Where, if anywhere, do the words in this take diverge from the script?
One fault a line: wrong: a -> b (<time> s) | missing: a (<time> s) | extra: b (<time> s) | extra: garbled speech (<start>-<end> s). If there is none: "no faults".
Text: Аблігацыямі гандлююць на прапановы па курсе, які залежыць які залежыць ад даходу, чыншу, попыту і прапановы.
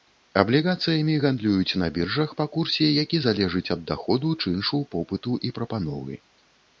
wrong: прапановы -> біржах (2.0 s)
missing: які залежыць (3.6 s)